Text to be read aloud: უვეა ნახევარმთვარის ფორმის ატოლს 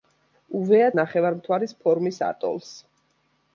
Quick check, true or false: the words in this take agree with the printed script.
true